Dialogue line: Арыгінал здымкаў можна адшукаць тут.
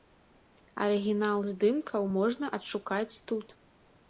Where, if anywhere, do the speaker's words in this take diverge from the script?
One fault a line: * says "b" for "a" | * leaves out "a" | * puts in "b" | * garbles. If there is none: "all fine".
all fine